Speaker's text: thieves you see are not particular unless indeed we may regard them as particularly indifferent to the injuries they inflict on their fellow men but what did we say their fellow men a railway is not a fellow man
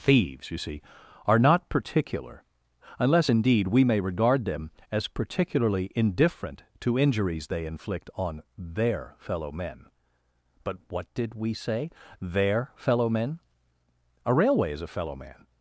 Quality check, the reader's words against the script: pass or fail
fail